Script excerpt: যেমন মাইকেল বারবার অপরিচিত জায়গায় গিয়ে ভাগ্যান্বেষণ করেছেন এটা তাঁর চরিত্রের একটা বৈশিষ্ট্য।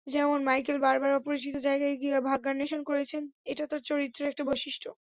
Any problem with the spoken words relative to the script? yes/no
no